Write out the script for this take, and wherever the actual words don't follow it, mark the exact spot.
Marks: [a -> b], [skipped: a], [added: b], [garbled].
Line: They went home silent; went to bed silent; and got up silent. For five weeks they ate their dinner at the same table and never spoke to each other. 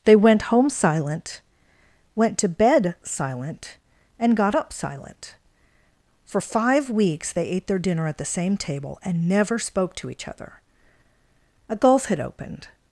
They went home silent; went to bed silent; and got up silent. For five weeks they ate their dinner at the same table and never spoke to each other. [added: A gulf had opened]